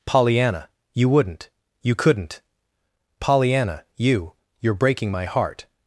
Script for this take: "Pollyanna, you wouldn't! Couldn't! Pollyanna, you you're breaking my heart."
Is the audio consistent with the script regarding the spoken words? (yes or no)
no